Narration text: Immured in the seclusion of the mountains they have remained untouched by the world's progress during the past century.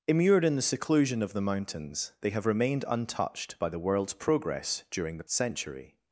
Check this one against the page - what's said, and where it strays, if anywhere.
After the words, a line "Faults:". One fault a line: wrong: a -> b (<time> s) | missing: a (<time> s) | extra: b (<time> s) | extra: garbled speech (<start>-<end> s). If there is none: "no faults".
Immured in the seclusion of the mountains they have remained untouched by the world's progress during the century.
Faults:
missing: past (5.2 s)